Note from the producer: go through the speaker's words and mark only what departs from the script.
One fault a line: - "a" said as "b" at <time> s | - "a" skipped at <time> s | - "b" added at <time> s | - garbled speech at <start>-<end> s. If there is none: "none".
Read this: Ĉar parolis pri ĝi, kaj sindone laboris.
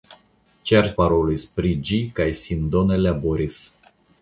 none